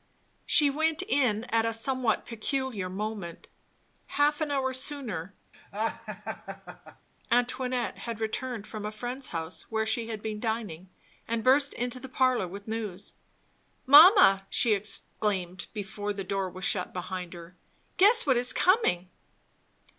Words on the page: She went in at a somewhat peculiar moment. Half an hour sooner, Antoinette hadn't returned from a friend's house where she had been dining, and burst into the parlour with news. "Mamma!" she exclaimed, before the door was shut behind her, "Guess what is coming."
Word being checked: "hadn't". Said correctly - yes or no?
no